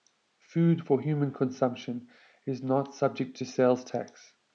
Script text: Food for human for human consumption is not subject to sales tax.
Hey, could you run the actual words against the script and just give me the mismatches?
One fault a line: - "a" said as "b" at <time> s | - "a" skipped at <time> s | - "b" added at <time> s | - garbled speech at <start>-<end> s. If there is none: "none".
- "for human" skipped at 1.3 s